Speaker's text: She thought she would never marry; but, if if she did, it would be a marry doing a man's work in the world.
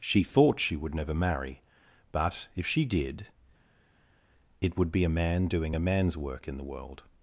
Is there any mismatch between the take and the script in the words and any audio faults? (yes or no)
yes